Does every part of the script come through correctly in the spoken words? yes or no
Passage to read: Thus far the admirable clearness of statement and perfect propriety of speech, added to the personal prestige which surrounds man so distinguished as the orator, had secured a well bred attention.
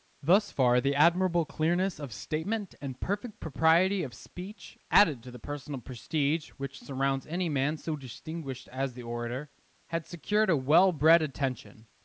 no